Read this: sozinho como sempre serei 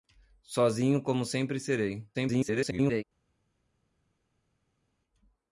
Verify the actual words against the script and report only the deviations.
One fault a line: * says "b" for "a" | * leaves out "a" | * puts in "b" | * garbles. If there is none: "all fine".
* garbles